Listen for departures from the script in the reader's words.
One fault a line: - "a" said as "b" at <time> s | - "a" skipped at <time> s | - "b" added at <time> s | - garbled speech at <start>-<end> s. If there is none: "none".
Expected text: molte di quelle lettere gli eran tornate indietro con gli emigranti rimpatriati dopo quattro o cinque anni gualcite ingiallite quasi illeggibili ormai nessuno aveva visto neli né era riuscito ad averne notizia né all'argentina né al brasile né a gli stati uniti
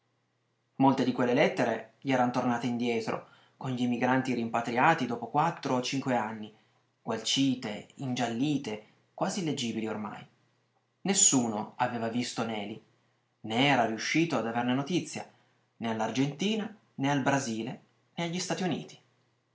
none